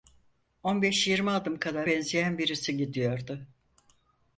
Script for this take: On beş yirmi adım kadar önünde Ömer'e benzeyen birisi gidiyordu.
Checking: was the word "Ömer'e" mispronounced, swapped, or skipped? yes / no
yes